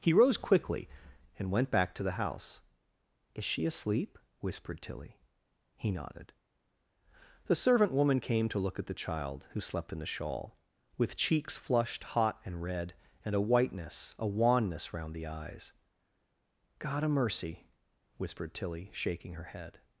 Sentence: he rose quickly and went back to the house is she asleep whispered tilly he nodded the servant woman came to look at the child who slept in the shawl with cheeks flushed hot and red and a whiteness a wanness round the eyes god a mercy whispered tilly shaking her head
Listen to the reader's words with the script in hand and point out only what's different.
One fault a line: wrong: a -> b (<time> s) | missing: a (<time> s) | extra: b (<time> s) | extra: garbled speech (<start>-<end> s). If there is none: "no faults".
no faults